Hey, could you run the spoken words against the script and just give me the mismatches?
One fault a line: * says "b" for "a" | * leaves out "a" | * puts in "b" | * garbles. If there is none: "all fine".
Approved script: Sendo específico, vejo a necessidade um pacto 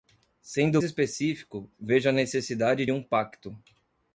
all fine